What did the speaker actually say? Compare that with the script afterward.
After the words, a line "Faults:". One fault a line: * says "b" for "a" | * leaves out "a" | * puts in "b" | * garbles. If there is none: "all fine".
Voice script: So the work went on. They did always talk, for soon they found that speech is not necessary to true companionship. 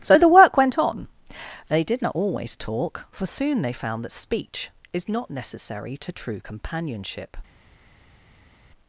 So the work went on. They did not always talk, for soon they found that speech is not necessary to true companionship.
Faults:
* puts in "not"